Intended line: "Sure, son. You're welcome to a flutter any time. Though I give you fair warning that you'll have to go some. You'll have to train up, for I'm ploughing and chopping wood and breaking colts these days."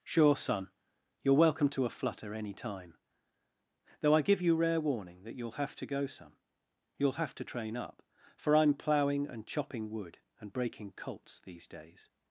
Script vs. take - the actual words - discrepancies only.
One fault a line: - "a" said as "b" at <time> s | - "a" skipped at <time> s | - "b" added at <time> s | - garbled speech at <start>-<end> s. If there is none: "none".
- "fair" said as "rare" at 4.5 s